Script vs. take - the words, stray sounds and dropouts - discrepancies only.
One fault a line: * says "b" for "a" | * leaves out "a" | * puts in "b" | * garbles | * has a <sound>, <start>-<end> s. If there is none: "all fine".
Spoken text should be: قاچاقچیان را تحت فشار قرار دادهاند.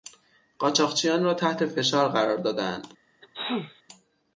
* has a sneeze, 3.2-3.8 s